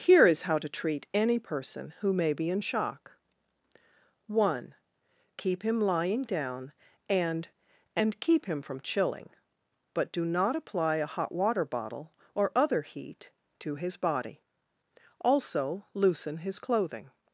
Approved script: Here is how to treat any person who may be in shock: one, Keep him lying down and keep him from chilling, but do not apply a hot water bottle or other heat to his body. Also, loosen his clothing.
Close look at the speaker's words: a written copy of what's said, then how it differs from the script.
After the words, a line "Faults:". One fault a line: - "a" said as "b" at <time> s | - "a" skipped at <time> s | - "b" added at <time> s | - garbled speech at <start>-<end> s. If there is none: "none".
Here is how to treat any person who may be in shock: one, Keep him lying down and and keep him from chilling, but do not apply a hot water bottle or other heat to his body. Also, loosen his clothing.
Faults:
- "and" added at 8.0 s